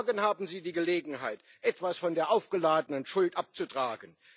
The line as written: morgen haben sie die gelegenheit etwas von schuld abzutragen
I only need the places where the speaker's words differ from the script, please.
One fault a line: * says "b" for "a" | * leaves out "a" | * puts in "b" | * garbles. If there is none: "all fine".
* puts in "der aufgeladenen"